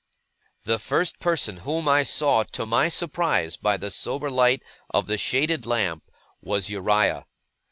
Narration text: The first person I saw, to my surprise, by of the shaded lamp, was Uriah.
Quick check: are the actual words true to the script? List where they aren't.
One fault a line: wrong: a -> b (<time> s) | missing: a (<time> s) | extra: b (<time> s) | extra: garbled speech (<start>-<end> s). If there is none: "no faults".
extra: whom (1.6 s)
extra: the sober light (3.8 s)